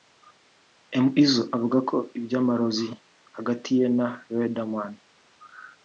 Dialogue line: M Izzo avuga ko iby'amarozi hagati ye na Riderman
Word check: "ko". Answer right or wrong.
right